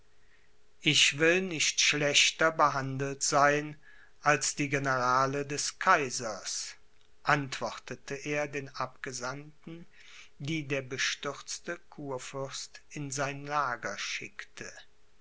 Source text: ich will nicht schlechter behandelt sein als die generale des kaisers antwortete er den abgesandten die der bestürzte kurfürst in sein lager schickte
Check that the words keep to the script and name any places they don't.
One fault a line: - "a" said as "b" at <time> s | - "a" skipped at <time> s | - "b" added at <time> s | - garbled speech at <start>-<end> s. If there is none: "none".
none